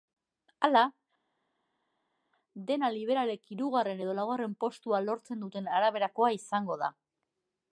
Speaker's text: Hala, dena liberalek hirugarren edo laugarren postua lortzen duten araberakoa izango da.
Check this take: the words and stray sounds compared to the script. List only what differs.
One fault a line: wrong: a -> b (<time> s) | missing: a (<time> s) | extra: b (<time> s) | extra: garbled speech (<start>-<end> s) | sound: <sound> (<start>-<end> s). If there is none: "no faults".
no faults